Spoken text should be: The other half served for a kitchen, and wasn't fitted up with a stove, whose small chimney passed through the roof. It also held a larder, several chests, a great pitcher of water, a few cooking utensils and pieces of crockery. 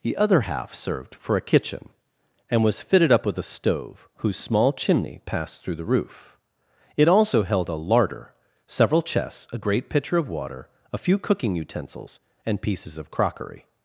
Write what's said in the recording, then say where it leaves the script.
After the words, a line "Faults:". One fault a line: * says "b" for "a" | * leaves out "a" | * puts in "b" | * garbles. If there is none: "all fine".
The other half served for a kitchen, and was fitted up with a stove, whose small chimney passed through the roof. It also held a larder, several chests, a great pitcher of water, a few cooking utensils and pieces of crockery.
Faults:
* says "was" for "wasn't"